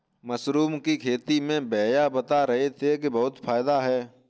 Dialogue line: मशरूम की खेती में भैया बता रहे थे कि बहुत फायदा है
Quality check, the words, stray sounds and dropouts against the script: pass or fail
pass